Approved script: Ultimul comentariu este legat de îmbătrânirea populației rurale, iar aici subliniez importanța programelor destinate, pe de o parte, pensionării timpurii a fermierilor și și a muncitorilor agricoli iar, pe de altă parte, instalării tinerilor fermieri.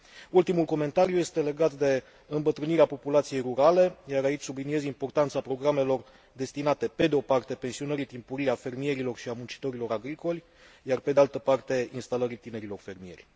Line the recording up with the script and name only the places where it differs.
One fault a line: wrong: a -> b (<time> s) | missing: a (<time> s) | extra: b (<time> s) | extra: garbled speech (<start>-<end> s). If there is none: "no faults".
missing: și (9.3 s)